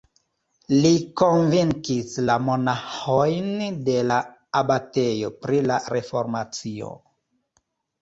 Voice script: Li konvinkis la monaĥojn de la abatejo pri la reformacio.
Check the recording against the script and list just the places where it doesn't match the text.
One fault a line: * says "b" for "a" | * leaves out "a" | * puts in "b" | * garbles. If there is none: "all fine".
all fine